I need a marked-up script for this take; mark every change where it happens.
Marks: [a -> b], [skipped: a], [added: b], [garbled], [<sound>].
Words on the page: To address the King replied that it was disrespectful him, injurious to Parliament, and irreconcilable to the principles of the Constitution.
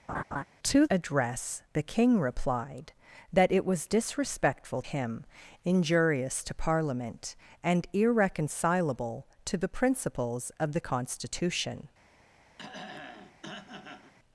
[laugh] To address the King replied that it was disrespectful him, injurious to Parliament, and irreconcilable to the principles of the Constitution. [throat clearing]